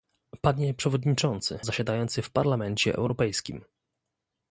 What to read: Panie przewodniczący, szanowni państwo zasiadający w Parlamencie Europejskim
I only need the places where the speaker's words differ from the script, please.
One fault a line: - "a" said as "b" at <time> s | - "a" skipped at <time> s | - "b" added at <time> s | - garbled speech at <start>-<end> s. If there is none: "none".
- "szanowni państwo" skipped at 1.6 s